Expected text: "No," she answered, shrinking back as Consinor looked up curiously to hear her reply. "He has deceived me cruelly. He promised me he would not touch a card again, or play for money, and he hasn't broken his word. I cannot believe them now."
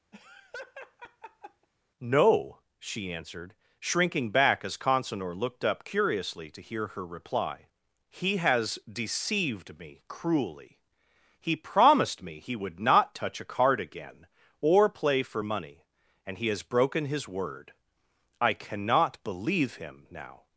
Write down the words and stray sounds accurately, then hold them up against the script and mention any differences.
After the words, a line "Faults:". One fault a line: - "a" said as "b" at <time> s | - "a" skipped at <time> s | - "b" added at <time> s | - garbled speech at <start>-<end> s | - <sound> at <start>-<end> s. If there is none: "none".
"No," she answered, shrinking back as Consinor looked up curiously to hear her reply. "He has deceived me cruelly. He promised me he would not touch a card again, or play for money, and he has broken his word. I cannot believe him now."
Faults:
- laugh at 0.1-1.7 s
- "hasn't" said as "has" at 16.5 s
- "them" said as "him" at 19.7 s